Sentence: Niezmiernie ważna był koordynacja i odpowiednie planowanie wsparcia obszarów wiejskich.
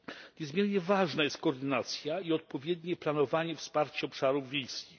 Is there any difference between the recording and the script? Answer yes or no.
yes